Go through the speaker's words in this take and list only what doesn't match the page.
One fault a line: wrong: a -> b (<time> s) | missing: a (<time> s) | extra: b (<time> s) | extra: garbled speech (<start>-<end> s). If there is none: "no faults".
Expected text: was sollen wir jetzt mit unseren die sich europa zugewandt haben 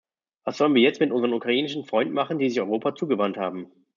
extra: ukrainischen freunden machen (1.3 s)